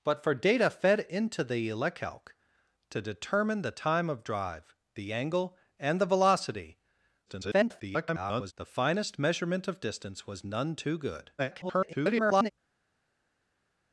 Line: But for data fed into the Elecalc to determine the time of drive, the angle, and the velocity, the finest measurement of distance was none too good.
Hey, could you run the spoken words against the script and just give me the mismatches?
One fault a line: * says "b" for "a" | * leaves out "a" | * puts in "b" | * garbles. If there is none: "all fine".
* garbles
* garbles